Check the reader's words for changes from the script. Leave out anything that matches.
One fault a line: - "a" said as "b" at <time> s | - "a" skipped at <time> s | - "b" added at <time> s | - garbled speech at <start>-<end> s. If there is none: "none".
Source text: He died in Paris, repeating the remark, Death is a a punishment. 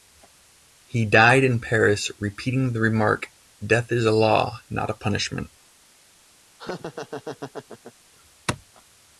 - "law not" added at 4.1 s